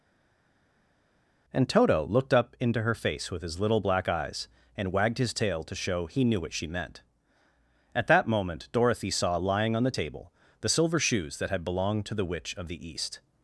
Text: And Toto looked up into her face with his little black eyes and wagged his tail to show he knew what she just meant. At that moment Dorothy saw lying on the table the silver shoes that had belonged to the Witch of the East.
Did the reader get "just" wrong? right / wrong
wrong